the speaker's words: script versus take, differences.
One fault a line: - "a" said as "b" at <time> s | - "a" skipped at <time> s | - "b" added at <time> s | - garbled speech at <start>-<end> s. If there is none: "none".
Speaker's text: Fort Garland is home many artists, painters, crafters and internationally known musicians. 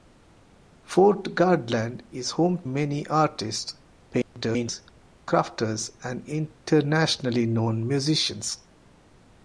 none